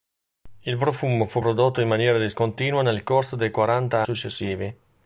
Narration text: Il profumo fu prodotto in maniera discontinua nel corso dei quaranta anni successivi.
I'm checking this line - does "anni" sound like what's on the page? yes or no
no